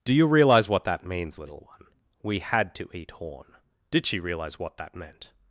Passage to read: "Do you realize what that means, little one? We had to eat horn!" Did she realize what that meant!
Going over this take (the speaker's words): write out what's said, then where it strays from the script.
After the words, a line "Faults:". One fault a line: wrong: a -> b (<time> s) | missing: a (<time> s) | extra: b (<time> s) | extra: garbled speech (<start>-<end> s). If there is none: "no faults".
"Do you realize what that means, little one? We had to eat horn!" Did she realize what that meant!
Faults:
no faults